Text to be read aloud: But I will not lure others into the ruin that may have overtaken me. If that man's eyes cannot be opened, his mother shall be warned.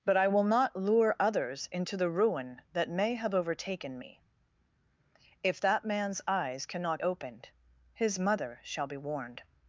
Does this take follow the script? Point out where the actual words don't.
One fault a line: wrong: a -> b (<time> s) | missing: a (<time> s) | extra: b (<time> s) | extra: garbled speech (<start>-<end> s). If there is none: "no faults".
missing: be (7.0 s)